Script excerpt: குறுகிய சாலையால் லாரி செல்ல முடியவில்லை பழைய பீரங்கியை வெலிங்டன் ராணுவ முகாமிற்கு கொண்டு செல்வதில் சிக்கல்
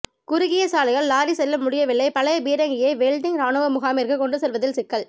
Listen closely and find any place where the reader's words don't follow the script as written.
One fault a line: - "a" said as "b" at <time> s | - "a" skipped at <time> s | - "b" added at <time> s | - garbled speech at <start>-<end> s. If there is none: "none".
none